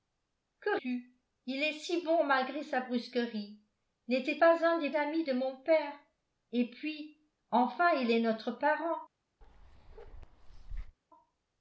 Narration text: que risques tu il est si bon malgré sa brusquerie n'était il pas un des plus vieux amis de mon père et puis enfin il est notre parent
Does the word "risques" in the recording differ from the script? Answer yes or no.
yes